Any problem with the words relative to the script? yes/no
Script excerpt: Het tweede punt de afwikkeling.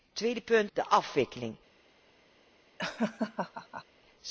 no